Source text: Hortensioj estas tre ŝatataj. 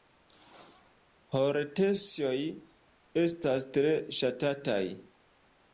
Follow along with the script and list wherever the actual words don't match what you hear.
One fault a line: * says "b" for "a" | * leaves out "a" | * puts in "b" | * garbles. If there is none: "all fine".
all fine